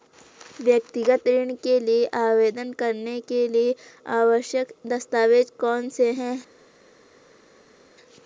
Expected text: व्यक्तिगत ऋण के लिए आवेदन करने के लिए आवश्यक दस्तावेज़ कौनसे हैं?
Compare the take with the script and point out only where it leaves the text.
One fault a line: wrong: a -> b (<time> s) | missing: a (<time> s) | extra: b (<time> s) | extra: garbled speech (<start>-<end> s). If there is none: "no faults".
no faults